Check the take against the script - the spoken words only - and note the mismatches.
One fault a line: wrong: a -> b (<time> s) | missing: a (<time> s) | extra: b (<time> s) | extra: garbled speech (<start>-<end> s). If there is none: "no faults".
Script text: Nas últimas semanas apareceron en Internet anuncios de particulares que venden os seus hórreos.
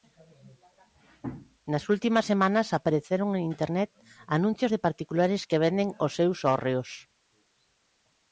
no faults